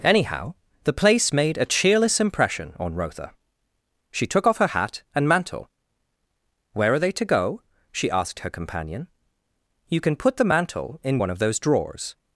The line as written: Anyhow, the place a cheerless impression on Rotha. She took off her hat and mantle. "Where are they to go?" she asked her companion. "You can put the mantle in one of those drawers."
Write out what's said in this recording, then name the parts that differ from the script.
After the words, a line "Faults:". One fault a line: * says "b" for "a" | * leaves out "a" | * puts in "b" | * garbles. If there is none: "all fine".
Anyhow, the place made a cheerless impression on Rotha. She took off her hat and mantle. "Where are they to go?" she asked her companion. "You can put the mantle in one of those drawers."
Faults:
* puts in "made"